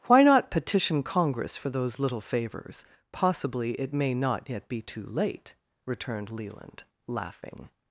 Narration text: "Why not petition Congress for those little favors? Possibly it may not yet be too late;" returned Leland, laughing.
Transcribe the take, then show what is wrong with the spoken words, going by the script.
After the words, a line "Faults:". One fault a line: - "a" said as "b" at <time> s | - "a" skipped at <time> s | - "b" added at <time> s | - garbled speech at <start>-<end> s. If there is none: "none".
"Why not petition Congress for those little favors? Possibly it may not yet be too late;" returned Leland, laughing.
Faults:
none